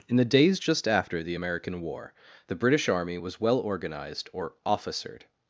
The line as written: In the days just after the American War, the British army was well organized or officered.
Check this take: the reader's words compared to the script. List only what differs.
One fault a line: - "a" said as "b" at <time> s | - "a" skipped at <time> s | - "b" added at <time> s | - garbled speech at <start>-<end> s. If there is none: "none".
none